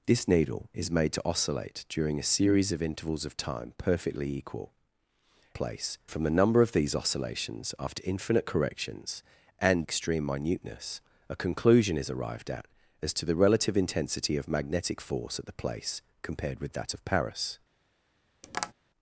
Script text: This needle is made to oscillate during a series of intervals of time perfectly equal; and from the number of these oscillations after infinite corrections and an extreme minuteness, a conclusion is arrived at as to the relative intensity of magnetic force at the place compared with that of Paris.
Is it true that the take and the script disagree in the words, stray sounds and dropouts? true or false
true